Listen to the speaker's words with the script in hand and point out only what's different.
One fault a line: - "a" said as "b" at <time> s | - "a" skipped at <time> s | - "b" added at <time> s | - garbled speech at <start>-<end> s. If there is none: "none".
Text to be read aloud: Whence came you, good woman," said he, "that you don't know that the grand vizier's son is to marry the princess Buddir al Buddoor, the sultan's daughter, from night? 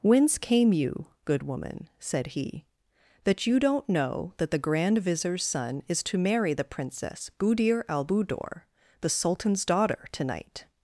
- "from" said as "to" at 10.1 s